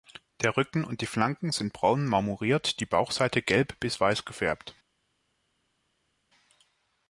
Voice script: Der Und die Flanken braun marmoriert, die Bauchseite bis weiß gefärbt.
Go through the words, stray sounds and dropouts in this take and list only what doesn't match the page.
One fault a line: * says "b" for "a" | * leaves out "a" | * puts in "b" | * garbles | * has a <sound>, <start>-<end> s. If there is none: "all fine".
* puts in "Rücken"
* puts in "sind"
* puts in "gelb"